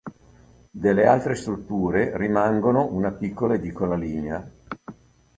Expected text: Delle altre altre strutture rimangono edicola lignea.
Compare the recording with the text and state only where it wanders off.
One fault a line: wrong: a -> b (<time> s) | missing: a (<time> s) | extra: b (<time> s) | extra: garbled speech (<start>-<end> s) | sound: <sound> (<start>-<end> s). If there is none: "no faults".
missing: altre (1.4 s)
extra: una piccola (2.9 s)